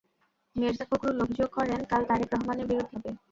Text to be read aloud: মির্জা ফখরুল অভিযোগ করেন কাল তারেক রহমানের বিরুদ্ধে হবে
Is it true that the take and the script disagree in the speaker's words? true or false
false